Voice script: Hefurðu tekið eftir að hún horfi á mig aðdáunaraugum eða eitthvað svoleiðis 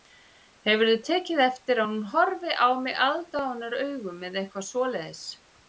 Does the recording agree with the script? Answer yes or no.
yes